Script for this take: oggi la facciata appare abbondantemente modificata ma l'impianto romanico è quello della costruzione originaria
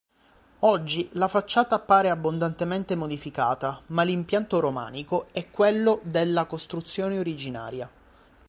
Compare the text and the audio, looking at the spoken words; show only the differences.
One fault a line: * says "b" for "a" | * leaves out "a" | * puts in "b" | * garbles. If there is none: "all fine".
all fine